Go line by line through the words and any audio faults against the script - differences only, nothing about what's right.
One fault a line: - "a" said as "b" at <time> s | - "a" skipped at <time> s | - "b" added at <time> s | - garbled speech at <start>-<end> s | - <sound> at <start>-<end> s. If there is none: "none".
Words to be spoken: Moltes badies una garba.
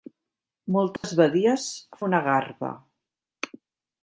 - dropout at 1.0-1.0 s